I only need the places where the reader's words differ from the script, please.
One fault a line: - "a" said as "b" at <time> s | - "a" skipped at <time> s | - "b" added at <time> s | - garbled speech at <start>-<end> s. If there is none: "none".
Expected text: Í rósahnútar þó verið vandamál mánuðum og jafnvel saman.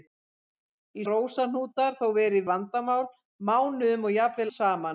none